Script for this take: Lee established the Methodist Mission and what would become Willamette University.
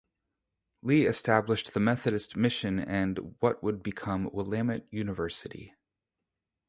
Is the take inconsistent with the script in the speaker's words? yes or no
no